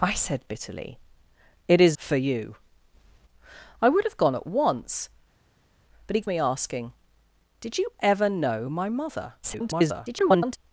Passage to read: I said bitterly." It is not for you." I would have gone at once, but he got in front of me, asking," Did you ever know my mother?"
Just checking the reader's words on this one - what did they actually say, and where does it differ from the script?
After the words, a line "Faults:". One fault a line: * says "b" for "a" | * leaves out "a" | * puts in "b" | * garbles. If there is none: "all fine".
I said bitterly." It is for you." I would have gone at once, but he of me, asking," Did you ever know my mother?" [garbled]
Faults:
* leaves out "not"
* leaves out "got in front"
* garbles